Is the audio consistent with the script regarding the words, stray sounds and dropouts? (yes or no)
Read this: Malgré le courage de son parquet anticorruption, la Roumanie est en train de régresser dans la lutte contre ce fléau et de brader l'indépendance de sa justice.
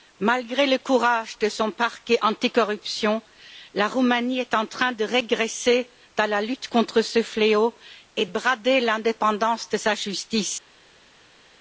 no